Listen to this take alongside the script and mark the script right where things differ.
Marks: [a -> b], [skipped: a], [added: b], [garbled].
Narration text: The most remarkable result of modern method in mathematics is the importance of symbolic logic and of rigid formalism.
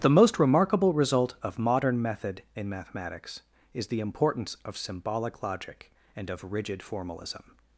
The most remarkable result of modern method in mathematics is the importance of symbolic logic and of rigid formalism.